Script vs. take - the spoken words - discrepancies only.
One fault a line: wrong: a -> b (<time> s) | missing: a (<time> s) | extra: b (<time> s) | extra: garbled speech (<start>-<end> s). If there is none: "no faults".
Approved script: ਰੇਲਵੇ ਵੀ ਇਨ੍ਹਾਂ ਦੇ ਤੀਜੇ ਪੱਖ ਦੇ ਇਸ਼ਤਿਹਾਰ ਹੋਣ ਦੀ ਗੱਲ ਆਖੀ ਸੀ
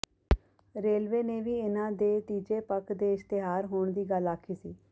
extra: ਨੇ (1.2 s)